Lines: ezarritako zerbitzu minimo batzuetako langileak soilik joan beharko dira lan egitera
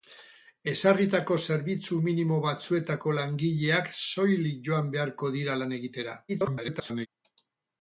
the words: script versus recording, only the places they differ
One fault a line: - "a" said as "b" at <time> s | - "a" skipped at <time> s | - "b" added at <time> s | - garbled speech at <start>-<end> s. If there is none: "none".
- garbled speech at 6.3-7.1 s